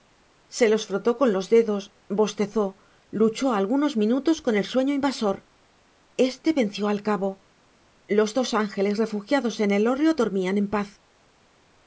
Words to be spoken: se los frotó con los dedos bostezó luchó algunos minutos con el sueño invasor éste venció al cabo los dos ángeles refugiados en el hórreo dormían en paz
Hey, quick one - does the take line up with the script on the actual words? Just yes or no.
yes